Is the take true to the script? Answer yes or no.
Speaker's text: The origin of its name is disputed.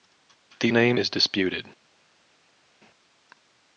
no